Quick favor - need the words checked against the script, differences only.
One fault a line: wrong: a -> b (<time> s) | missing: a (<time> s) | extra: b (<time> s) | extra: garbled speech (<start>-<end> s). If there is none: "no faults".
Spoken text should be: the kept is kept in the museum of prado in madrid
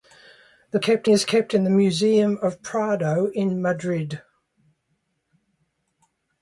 no faults